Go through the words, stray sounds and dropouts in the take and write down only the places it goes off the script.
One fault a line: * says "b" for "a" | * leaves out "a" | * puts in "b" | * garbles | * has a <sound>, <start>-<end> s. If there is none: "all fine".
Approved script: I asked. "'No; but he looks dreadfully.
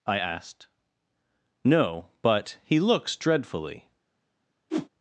* has a whoosh, 4.7-4.9 s